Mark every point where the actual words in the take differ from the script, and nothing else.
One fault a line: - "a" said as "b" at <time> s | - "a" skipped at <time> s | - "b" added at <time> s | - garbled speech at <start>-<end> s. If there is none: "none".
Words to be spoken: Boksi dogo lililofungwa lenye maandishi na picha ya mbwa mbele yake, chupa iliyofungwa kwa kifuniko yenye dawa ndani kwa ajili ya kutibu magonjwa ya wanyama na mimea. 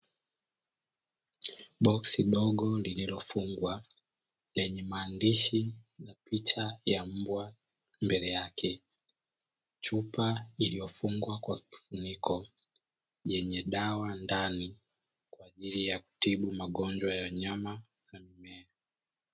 none